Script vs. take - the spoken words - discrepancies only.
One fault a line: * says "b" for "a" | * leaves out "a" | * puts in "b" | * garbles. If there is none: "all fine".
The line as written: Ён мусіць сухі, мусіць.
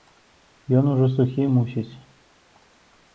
* says "ужо" for "мусіць"